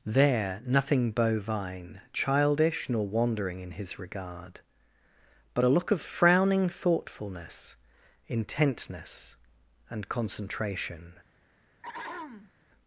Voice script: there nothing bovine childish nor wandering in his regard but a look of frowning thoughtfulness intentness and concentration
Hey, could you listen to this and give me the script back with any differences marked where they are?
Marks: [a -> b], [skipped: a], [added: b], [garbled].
there nothing bovine childish nor wandering in his regard but a look of frowning thoughtfulness intentness and concentration